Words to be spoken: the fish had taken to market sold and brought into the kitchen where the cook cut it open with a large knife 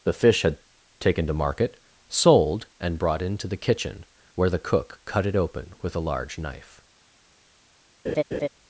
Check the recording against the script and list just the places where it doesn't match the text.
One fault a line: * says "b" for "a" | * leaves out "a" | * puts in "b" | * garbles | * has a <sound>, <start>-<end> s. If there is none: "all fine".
* has a laugh, 8.1-8.5 s